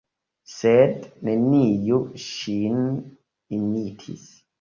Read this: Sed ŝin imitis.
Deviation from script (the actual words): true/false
true